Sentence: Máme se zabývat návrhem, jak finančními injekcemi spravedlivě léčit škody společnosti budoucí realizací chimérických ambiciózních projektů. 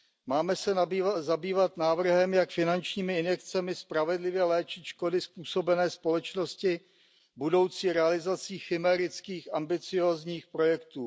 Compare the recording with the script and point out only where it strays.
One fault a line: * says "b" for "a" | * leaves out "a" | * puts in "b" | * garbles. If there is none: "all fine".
* puts in "způsobené"